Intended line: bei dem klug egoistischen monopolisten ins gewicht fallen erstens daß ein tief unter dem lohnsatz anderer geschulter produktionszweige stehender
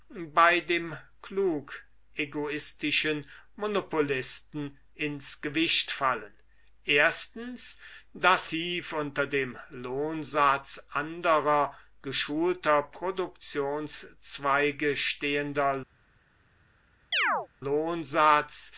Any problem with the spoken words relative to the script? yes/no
yes